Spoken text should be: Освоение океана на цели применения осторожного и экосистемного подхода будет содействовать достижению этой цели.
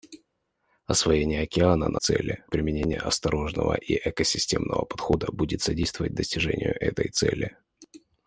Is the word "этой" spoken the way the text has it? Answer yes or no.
yes